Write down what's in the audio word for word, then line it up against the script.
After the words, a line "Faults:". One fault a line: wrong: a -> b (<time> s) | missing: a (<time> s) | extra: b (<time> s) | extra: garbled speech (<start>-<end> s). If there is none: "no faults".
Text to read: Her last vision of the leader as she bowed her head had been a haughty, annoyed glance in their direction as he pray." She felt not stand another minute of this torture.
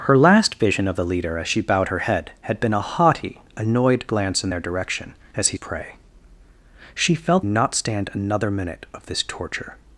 Her last vision of the leader as she bowed her head had been a haughty, annoyed glance in their direction as he pray." She felt not stand another minute of this torture.
Faults:
no faults